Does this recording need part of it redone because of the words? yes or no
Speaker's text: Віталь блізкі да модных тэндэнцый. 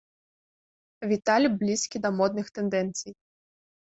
no